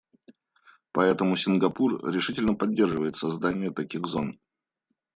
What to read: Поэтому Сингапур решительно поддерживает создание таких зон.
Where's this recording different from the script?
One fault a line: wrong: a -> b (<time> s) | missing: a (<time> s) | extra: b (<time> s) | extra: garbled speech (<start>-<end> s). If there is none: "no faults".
no faults